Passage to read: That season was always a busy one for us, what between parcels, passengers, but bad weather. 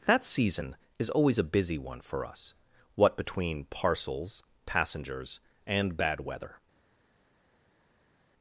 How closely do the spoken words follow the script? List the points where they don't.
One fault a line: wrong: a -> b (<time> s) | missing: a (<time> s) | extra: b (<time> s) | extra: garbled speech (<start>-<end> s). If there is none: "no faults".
wrong: was -> is (1.0 s)
wrong: but -> and (5.7 s)